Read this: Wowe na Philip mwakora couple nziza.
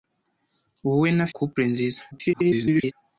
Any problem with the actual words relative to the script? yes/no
yes